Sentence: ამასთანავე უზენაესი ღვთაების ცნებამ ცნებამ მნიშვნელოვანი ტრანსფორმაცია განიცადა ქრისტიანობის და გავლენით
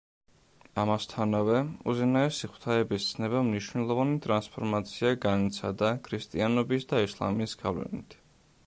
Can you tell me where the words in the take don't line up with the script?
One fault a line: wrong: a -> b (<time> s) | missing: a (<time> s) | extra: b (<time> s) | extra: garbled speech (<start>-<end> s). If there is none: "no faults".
missing: ცნებამ (3.5 s)
extra: ისლამის (7.1 s)